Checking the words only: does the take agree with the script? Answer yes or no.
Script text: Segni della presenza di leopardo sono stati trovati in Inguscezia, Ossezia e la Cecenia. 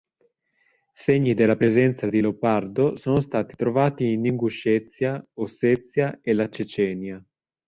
yes